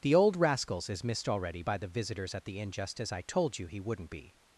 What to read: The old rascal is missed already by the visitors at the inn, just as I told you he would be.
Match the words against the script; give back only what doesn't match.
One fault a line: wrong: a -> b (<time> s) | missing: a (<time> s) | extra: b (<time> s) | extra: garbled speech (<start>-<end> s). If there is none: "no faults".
wrong: rascal -> rascals (0.3 s)
wrong: would -> wouldn't (3.8 s)